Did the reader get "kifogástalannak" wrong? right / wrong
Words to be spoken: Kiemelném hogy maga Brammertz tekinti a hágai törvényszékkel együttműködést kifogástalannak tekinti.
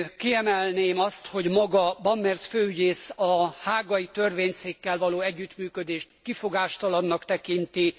right